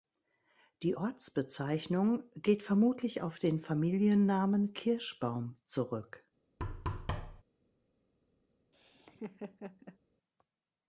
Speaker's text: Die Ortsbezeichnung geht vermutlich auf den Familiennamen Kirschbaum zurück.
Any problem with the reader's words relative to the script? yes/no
no